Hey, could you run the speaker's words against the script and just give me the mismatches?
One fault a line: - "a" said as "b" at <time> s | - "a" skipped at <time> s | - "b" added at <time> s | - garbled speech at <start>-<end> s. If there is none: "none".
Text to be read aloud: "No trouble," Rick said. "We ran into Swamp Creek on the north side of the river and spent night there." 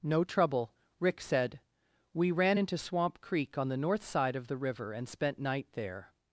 none